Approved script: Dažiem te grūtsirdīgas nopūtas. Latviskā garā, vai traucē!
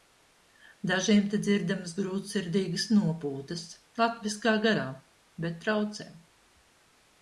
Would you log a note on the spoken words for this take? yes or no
yes